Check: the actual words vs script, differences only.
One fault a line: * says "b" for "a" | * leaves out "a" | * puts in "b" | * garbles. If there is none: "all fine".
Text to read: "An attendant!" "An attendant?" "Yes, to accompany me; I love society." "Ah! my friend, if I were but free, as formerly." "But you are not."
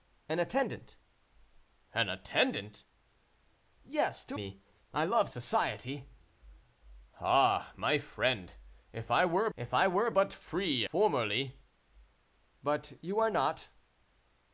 * leaves out "accompany"
* puts in "if I were"
* leaves out "as"